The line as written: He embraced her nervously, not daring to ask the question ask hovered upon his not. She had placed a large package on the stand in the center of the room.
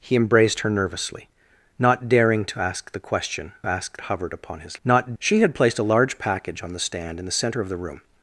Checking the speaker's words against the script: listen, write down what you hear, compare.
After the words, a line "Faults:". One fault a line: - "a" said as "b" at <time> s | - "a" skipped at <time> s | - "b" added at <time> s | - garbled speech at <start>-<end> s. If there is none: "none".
He embraced her nervously, not daring to ask the question ask hovered upon his not. She had placed a large package on the stand in the center of the room.
Faults:
none